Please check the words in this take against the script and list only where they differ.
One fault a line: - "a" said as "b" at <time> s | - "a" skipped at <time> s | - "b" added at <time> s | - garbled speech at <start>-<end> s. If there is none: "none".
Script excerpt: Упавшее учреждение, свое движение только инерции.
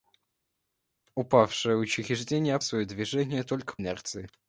none